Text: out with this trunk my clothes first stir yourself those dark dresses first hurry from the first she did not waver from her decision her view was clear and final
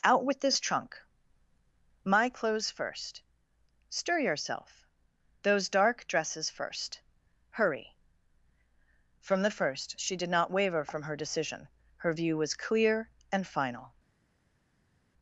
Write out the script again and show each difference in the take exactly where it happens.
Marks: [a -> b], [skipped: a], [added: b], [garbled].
out with this trunk my clothes first stir yourself those dark dresses first hurry from the first she did not waver from her decision her view was clear and final